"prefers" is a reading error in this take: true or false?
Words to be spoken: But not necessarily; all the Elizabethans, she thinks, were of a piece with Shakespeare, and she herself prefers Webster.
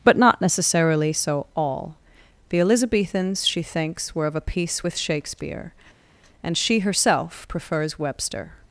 false